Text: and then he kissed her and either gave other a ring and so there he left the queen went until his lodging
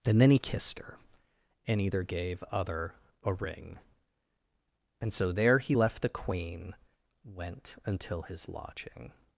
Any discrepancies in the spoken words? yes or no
no